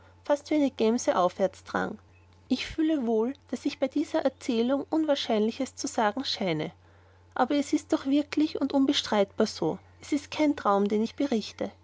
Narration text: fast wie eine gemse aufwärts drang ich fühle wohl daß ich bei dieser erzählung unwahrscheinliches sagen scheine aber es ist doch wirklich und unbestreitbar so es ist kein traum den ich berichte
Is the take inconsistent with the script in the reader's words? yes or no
yes